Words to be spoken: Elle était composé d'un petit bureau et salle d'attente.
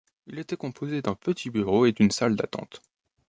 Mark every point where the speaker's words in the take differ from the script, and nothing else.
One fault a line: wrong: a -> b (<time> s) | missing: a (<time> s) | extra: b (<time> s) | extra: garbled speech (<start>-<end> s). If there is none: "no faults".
wrong: Elle -> Il (0.2 s)
extra: d'une (1.9 s)